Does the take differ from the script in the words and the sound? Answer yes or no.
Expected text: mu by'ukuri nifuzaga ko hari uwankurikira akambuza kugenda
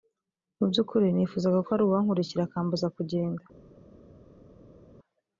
no